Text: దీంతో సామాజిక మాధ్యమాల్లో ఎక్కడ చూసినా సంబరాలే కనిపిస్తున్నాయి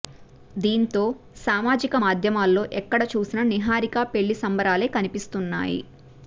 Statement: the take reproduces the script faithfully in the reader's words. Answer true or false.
false